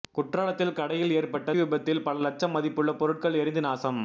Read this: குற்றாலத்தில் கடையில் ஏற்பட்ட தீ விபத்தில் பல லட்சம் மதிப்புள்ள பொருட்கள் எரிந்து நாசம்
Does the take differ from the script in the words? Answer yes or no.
yes